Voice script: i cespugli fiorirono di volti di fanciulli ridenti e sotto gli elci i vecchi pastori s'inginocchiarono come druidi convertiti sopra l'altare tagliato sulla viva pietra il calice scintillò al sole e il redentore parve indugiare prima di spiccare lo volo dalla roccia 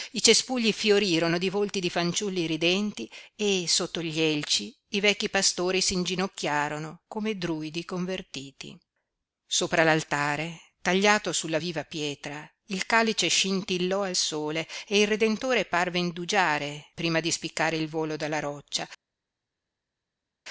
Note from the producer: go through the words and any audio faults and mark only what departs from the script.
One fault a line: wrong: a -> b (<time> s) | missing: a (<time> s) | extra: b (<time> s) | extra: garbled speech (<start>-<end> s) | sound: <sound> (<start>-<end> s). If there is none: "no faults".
wrong: lo -> il (17.8 s)